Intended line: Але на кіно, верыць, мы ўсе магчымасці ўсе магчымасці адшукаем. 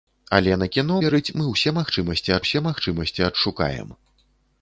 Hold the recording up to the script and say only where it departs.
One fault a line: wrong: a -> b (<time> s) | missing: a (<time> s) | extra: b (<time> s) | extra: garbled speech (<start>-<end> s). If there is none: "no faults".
no faults